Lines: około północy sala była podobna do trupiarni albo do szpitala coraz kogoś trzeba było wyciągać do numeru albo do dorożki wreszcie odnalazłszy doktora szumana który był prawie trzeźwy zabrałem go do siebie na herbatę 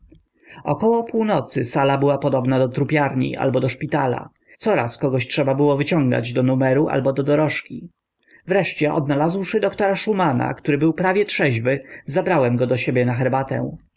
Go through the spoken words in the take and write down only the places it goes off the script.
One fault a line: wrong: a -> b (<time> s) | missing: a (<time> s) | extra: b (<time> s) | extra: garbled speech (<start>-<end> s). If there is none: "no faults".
no faults